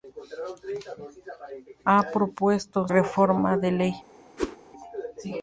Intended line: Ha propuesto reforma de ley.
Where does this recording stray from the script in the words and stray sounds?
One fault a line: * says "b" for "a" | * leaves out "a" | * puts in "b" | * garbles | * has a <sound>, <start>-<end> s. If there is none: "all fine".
* has a whoosh, 4.4-4.6 s